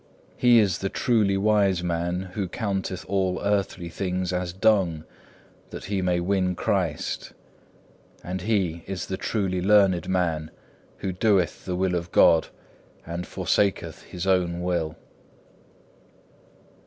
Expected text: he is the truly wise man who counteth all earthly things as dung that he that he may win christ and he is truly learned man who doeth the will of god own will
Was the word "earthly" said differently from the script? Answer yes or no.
no